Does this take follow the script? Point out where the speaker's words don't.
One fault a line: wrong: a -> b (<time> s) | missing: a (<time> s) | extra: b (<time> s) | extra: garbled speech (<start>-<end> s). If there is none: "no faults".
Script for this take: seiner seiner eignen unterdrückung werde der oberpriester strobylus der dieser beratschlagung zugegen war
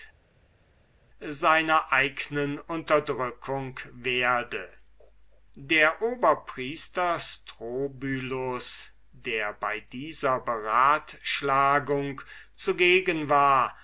missing: seiner (1.9 s)
extra: bei (9.5 s)